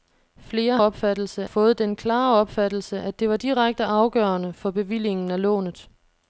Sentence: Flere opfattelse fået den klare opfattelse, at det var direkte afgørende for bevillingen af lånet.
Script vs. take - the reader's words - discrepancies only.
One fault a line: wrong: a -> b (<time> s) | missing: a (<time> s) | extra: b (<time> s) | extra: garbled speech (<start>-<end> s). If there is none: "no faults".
no faults